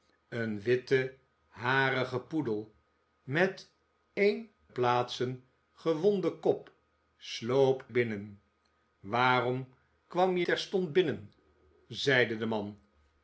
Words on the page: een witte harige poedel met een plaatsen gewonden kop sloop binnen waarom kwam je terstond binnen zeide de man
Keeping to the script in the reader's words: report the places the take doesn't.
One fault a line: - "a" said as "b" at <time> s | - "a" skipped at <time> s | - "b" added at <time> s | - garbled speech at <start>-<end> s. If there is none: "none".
none